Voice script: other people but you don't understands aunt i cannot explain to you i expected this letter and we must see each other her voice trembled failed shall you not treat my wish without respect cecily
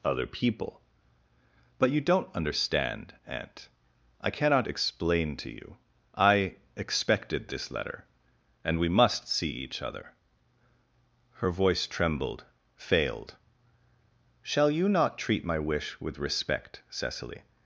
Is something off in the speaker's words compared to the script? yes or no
yes